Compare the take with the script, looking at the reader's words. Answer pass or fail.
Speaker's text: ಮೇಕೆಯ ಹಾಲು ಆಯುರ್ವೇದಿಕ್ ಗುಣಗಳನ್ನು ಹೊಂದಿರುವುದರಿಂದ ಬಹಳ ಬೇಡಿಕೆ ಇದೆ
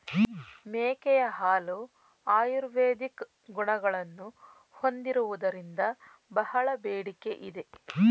pass